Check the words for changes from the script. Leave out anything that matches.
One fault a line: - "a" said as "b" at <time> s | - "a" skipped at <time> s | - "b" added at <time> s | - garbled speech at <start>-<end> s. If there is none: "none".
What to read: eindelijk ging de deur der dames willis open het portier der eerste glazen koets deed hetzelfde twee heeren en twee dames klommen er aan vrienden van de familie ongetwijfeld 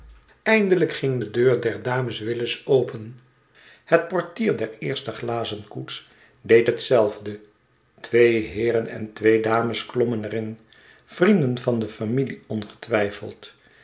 - "aan" said as "in" at 10.3 s